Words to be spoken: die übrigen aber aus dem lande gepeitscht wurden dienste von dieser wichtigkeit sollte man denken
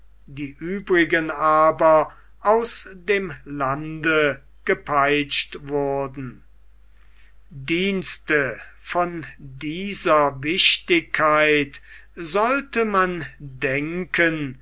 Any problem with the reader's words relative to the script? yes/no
no